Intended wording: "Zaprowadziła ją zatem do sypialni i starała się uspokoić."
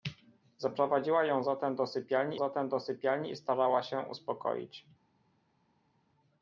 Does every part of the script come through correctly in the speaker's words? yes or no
no